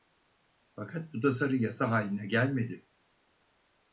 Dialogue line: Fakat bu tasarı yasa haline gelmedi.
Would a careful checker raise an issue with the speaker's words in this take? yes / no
no